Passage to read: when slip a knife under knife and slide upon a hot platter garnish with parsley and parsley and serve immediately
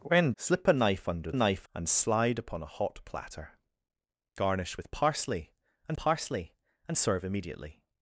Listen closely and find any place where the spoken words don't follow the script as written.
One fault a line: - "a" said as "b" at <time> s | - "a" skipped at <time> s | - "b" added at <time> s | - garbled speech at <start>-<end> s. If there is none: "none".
none